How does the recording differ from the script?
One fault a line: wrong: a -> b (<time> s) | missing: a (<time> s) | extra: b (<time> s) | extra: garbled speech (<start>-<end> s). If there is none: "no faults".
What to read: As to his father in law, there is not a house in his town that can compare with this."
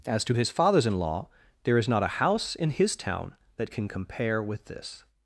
wrong: father -> fathers (0.5 s)